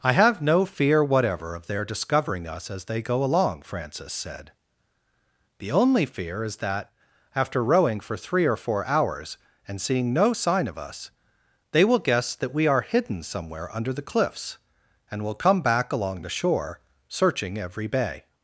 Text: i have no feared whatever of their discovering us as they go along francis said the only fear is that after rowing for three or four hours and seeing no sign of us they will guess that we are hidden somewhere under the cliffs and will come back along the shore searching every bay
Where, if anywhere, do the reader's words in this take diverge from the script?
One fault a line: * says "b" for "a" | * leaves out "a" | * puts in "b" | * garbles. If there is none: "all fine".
* says "fear" for "feared"